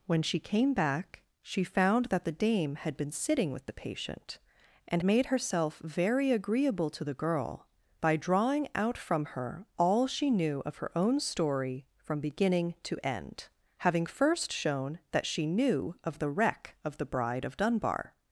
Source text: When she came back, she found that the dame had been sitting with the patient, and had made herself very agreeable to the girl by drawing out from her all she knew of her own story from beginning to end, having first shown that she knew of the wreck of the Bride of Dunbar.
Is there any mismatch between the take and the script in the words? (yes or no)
yes